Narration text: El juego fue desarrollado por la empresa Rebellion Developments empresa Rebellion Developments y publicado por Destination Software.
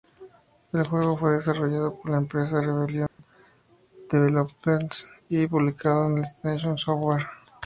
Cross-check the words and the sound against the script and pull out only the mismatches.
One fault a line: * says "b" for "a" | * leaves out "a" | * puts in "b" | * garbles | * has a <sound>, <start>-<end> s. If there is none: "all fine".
* has a dropout, 3.1-3.2 s
* leaves out "empresa Rebellion Developments"